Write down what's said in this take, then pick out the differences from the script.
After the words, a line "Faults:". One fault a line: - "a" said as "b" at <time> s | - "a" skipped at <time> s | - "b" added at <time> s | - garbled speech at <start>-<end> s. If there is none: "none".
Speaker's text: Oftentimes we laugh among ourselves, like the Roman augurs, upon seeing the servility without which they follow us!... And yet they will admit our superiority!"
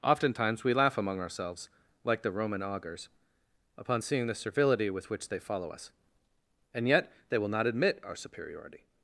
Oftentimes we laugh among ourselves, like the Roman augurs, upon seeing the servility with which they follow us!... And yet they will not admit our superiority!"
Faults:
- "without" said as "with" at 4.9 s
- "not" added at 7.5 s